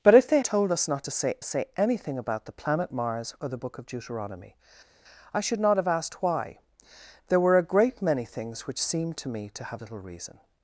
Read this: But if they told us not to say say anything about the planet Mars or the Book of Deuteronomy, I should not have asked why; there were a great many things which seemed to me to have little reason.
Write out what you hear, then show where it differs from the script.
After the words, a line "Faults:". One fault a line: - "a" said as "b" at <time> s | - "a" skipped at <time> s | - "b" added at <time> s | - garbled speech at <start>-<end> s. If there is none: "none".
But if they told us not to say say anything about the planet Mars or the Book of Deuteronomy, I should not have asked why; there were a great many things which seemed to me to have little reason.
Faults:
none